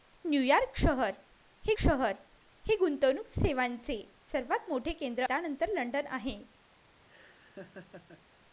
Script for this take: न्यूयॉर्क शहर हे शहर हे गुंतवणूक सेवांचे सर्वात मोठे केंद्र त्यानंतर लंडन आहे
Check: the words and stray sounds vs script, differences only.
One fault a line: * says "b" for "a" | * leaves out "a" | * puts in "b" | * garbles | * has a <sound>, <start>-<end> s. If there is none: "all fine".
* has a laugh, 7.1-8.3 s